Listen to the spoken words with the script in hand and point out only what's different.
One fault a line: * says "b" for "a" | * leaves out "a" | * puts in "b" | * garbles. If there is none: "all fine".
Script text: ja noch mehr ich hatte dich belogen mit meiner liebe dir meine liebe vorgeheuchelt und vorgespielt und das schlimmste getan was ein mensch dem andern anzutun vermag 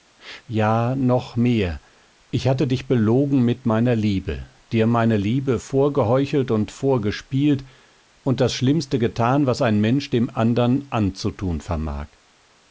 all fine